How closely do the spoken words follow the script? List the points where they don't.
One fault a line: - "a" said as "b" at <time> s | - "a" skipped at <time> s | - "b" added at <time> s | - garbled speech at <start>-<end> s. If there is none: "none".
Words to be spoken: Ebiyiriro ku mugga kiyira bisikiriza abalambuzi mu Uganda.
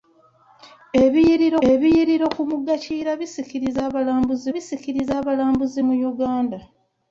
- "ebiyiriro" added at 1.7 s
- "bisikiriza abalambuzi" added at 4.5 s